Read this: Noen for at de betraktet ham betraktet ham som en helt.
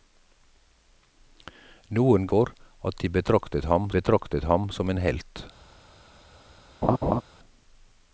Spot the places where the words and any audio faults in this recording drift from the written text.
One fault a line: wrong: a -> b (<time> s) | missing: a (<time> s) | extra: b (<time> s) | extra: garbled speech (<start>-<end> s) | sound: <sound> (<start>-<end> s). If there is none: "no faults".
sound: laugh (6.8-7.2 s)